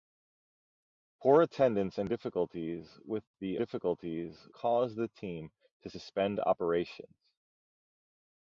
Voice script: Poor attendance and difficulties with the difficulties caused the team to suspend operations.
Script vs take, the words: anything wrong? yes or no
no